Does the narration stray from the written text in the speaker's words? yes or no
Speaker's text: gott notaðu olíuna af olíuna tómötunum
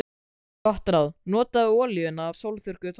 yes